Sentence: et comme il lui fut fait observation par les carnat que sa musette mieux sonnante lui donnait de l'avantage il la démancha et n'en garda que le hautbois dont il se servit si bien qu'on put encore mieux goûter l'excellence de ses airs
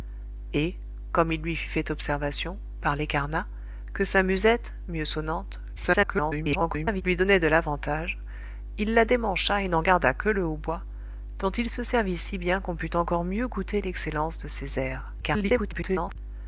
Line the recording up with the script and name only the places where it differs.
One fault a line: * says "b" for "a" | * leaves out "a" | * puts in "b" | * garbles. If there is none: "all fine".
* garbles
* garbles